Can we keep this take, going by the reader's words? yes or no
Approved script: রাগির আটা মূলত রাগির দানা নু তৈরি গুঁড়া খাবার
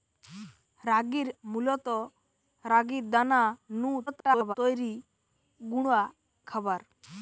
no